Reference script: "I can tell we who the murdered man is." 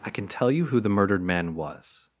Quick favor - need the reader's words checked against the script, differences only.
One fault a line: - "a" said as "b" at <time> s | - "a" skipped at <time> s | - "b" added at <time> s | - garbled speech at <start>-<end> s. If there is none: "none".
- "we" said as "you" at 0.5 s
- "is" said as "was" at 1.6 s